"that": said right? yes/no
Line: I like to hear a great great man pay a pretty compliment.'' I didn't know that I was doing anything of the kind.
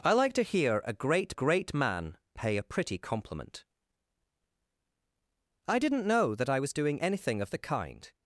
yes